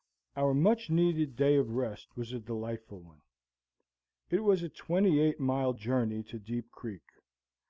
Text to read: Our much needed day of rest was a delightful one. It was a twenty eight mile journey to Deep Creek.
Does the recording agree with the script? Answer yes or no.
yes